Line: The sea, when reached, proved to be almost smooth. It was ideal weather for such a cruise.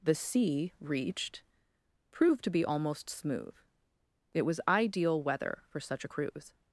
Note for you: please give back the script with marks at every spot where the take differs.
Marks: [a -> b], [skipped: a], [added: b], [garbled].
The sea, [skipped: when] reached, proved to be almost smooth. It was ideal weather for such a cruise.